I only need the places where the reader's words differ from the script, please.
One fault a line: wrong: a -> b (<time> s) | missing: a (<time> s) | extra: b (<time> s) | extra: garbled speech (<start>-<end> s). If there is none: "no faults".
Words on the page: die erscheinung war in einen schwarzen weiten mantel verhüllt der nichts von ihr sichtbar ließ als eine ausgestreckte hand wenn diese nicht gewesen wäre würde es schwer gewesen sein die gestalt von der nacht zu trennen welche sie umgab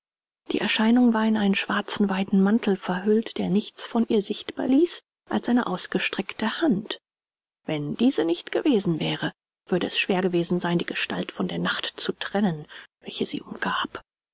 no faults